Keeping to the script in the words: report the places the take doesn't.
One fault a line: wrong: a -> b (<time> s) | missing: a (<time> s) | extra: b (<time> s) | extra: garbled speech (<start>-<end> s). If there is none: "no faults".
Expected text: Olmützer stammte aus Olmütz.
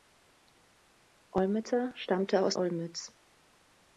no faults